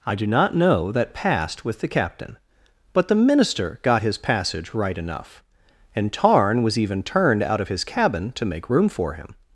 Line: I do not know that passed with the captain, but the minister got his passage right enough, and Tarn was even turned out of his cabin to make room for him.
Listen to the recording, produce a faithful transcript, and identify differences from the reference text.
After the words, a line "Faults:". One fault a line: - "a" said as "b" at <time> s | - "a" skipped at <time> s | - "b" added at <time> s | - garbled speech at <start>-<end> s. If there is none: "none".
I do not know that passed with the captain, but the minister got his passage right enough, and Tarn was even turned out of his cabin to make room for him.
Faults:
none